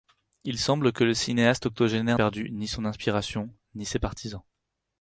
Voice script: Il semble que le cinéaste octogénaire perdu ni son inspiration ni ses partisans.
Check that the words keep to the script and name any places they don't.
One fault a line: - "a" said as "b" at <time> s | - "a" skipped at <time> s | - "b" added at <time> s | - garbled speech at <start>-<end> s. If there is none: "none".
none